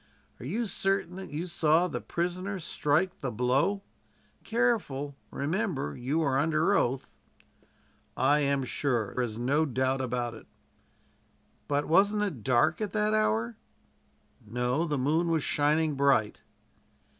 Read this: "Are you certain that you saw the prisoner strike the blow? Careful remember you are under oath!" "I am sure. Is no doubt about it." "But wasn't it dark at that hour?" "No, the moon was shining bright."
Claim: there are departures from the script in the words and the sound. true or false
false